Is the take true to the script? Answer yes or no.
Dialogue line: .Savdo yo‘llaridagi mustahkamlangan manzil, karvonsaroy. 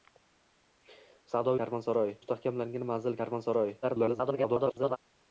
no